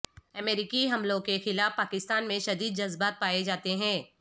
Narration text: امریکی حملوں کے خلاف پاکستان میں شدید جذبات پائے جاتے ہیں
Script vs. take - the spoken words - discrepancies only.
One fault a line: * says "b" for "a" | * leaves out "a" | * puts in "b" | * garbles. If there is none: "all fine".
all fine